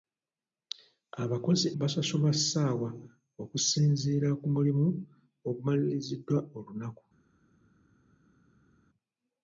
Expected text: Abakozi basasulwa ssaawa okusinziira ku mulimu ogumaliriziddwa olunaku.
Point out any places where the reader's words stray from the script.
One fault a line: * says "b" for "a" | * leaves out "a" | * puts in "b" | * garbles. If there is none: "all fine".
all fine